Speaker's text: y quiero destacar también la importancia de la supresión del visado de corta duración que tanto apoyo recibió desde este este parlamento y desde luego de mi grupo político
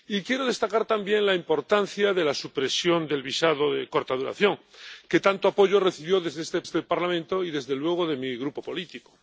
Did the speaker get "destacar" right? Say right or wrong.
right